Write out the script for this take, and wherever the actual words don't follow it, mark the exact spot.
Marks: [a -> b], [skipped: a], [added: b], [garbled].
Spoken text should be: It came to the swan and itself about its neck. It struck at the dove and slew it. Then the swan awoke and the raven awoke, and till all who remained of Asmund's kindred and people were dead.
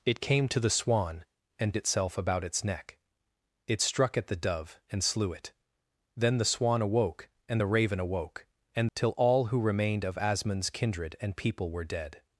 It came to the swan and itself about its neck. It struck at the dove and slew it. Then the swan awoke and the raven awoke, and till all who remained of Asmund's kindred and people were dead.